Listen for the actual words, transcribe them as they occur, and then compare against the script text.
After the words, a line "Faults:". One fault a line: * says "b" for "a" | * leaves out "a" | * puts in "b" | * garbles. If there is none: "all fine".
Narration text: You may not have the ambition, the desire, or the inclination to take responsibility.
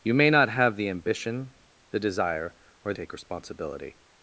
You may not have the ambition, the desire, or take responsibility.
Faults:
* leaves out "the inclination to"